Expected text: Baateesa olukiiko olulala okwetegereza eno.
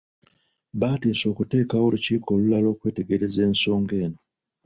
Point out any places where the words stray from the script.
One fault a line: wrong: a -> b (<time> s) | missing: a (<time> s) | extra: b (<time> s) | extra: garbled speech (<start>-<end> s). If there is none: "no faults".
extra: okuteekawo (1.3 s)
extra: ensonga (3.5 s)